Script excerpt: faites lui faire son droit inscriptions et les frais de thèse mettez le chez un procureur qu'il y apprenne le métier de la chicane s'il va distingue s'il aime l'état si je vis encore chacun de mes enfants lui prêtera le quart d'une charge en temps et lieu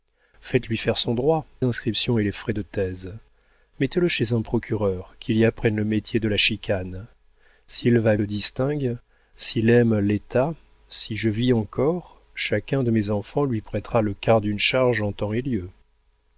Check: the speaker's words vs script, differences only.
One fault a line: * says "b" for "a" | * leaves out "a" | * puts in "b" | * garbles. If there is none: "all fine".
all fine